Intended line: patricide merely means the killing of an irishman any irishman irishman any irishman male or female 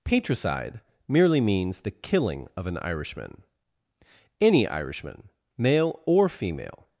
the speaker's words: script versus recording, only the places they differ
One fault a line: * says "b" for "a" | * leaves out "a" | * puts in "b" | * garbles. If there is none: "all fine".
* leaves out "irishman any irishman"